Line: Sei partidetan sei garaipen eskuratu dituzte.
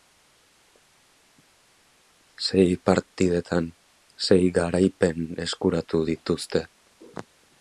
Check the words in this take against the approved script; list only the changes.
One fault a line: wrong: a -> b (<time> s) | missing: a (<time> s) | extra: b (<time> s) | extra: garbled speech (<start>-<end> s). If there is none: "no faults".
no faults